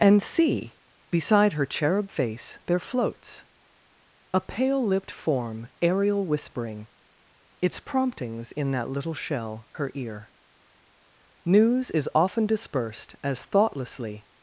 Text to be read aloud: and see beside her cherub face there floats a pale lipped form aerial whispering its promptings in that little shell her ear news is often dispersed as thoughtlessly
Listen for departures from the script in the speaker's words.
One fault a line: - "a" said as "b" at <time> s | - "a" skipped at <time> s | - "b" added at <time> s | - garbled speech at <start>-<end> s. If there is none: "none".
none